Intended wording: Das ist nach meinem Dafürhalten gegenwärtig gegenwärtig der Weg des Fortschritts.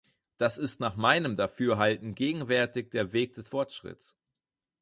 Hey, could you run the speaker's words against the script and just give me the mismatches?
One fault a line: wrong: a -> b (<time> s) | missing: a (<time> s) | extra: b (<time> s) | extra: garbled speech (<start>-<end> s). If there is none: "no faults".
missing: gegenwärtig (2.9 s)